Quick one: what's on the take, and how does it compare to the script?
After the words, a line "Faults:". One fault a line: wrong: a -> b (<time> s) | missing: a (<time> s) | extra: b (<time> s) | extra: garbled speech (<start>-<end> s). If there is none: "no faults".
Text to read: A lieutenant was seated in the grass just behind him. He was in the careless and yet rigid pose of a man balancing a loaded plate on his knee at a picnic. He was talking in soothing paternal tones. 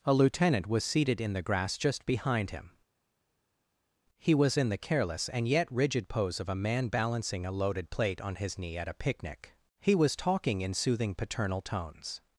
A lieutenant was seated in the grass just behind him. He was in the careless and yet rigid pose of a man balancing a loaded plate on his knee at a picnic. He was talking in soothing paternal tones.
Faults:
no faults